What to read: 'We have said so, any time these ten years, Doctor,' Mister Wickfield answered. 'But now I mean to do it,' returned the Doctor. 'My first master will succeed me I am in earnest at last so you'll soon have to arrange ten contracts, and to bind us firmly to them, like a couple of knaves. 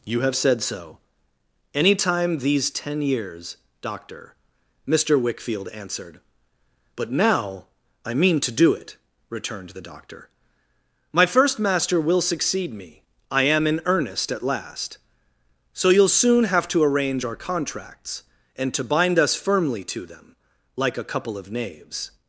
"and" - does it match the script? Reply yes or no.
yes